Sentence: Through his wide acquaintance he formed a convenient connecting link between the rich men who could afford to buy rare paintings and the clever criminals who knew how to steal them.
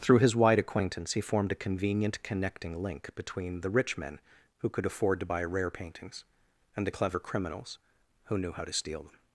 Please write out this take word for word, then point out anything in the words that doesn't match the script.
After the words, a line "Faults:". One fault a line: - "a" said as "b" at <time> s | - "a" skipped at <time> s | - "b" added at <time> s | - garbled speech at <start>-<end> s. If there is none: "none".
Through his wide acquaintance he formed a convenient connecting link between the rich men who could afford to buy rare paintings and the clever criminals who knew how to steal them.
Faults:
none